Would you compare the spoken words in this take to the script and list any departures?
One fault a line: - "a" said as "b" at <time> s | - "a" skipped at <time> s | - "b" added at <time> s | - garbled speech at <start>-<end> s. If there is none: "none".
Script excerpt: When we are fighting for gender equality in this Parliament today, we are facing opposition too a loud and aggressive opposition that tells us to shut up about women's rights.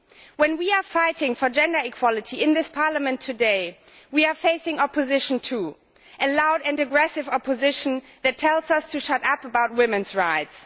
none